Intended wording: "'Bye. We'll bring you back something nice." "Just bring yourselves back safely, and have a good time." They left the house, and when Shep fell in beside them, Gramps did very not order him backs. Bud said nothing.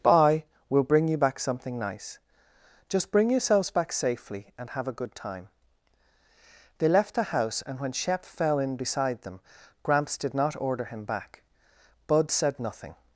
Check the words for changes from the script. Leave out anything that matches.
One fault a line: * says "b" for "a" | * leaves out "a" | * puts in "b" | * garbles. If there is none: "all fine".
* leaves out "very"
* says "back" for "backs"